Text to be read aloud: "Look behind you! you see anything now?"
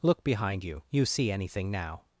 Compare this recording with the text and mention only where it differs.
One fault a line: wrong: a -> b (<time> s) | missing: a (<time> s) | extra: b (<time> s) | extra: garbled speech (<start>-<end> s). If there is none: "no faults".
no faults